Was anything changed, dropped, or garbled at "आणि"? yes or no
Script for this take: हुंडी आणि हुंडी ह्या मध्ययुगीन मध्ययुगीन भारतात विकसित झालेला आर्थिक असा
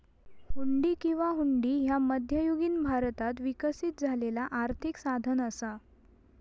yes